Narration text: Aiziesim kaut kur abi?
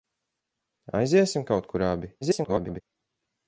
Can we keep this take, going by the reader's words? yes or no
no